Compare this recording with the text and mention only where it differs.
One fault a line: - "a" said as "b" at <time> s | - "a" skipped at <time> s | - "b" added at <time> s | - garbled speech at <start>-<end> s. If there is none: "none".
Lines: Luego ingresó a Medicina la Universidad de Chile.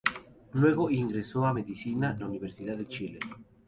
none